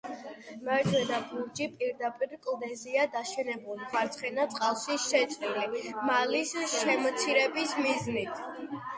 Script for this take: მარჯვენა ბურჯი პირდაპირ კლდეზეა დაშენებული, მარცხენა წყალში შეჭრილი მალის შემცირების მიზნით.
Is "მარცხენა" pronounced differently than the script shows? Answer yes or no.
no